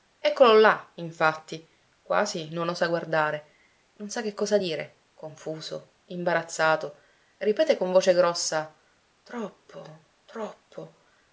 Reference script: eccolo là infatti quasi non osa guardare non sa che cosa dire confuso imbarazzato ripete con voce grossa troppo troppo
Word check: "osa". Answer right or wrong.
right